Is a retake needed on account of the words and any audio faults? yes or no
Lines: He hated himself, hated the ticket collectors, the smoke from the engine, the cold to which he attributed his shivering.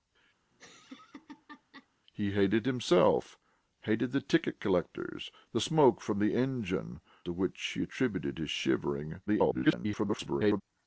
yes